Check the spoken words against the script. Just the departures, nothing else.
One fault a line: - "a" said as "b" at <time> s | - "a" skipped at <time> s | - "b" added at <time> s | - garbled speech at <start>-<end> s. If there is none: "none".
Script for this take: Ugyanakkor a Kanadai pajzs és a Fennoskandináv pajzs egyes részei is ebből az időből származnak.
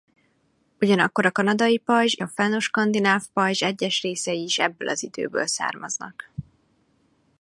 - "és" skipped at 2.1 s